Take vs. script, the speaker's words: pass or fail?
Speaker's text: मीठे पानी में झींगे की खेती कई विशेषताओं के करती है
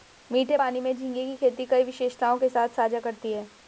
fail